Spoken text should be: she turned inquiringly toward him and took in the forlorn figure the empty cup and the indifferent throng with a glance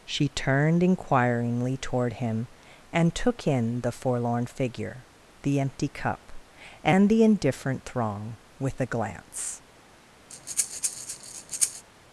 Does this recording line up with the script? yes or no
yes